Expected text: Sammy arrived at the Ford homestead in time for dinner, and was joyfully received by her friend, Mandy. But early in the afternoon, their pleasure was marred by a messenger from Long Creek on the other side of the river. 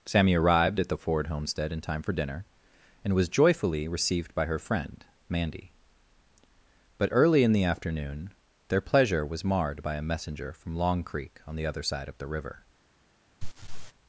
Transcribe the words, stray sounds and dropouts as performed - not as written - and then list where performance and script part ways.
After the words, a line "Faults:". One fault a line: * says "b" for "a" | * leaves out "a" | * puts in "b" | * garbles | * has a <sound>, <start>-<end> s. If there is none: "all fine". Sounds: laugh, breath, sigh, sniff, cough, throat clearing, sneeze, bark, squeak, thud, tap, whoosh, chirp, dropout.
Sammy arrived at the Ford homestead in time for dinner, and was joyfully received by her friend, Mandy. But early in the afternoon, their pleasure was marred by a messenger from Long Creek on the other side of the river.
Faults:
* has a laugh, 13.4-13.9 s